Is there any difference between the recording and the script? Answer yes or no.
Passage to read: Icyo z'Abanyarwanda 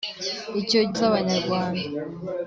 no